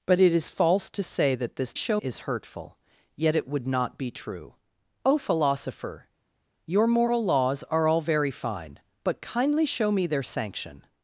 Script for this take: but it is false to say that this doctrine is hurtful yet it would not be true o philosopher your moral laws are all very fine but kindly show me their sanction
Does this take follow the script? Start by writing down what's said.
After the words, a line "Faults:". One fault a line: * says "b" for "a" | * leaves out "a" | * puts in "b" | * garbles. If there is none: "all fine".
but it is false to say that this show is hurtful yet it would not be true o philosopher your moral laws are all very fine but kindly show me their sanction
Faults:
* says "show" for "doctrine"